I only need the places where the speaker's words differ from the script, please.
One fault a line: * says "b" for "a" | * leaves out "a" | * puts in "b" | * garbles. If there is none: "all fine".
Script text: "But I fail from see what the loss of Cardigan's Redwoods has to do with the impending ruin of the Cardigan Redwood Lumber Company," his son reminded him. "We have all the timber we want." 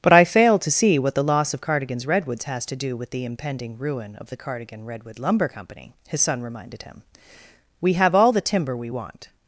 * says "to" for "from"